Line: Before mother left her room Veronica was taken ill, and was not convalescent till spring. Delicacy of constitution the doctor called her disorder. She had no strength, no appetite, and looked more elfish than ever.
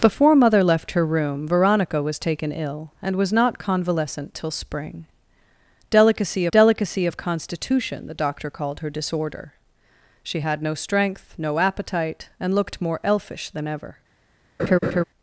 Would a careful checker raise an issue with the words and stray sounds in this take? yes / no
yes